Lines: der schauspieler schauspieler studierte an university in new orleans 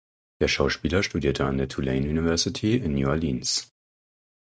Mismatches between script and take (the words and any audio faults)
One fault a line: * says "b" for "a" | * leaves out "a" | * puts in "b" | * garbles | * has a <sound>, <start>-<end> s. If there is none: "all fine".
* leaves out "schauspieler"
* puts in "der tulane"